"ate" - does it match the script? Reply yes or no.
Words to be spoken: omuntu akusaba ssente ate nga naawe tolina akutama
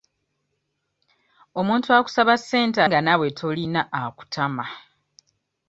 no